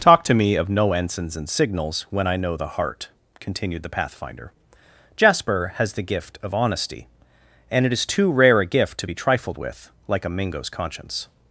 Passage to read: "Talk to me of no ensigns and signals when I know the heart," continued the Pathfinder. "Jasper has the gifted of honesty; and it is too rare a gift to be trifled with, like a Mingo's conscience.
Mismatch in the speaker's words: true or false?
true